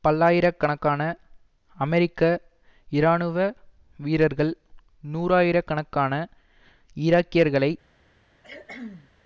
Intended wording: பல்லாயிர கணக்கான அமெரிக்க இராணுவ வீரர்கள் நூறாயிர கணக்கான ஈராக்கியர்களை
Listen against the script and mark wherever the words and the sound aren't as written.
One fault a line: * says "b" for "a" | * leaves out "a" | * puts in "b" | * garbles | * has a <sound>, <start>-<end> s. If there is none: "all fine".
* has a cough, 8.4-9.1 s